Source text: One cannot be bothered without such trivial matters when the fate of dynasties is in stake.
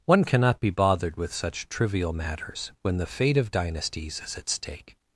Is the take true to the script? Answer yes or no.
no